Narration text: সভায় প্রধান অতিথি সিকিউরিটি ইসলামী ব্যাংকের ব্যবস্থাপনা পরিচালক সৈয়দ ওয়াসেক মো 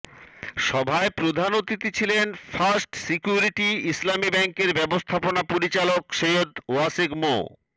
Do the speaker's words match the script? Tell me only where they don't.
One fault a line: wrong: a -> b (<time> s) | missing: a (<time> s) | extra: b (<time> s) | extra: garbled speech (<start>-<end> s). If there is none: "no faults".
extra: ছিলেন ফার্স্ট (2.0 s)